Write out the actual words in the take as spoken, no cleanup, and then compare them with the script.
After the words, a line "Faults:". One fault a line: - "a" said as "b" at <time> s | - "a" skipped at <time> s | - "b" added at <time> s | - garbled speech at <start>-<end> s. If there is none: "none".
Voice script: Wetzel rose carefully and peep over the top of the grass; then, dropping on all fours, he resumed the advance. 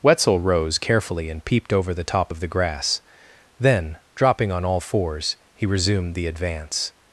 Wetzel rose carefully and peeped over the top of the grass; then, dropping on all fours, he resumed the advance.
Faults:
- "peep" said as "peeped" at 1.4 s